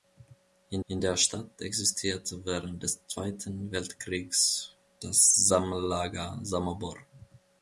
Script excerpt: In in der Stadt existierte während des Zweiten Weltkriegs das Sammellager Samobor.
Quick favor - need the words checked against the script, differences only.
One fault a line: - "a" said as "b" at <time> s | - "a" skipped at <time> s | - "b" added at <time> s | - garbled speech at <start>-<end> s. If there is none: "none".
none